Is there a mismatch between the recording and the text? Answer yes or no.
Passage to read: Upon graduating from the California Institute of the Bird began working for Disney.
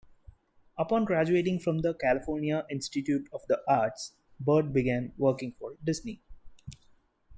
yes